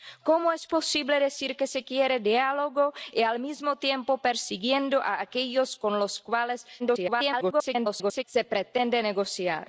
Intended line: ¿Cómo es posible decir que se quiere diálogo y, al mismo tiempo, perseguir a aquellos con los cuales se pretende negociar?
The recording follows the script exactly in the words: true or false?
false